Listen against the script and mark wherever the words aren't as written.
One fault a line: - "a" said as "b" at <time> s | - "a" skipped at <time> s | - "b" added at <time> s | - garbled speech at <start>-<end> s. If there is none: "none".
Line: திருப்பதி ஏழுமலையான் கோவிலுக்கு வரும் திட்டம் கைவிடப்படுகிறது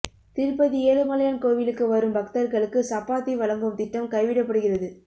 - "பக்தர்களுக்கு சப்பாத்தி வழங்கும்" added at 2.2 s